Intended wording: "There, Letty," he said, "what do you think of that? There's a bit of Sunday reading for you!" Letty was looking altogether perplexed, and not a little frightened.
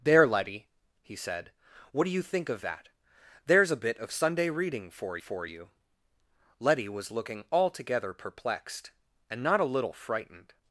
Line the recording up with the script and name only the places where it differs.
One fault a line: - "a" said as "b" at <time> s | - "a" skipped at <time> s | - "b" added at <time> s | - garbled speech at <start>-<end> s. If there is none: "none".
- "for" added at 5.2 s